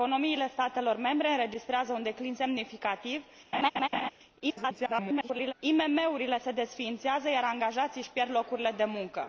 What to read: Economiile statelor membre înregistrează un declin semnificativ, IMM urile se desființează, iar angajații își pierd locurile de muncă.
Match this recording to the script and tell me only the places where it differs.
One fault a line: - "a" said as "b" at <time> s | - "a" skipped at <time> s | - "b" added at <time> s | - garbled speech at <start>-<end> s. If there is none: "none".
- garbled speech at 4.4-5.5 s